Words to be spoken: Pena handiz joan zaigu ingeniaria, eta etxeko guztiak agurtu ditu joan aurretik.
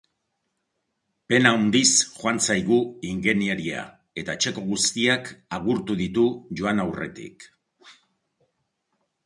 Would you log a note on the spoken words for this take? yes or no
no